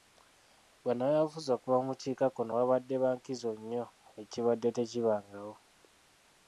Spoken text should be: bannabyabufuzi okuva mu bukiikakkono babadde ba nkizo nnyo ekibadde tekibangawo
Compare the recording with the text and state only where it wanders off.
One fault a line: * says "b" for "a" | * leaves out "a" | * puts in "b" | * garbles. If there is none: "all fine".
all fine